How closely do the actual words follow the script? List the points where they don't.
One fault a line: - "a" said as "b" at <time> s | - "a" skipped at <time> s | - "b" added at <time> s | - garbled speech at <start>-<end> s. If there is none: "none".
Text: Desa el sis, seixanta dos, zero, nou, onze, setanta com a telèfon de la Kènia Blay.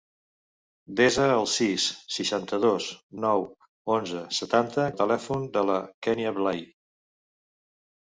- "zero" skipped at 2.9 s
- "com" skipped at 4.8 s